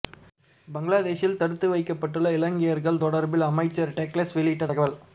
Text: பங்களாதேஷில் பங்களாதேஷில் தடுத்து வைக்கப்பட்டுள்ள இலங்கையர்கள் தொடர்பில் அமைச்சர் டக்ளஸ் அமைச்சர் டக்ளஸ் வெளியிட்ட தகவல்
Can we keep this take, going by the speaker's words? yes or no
no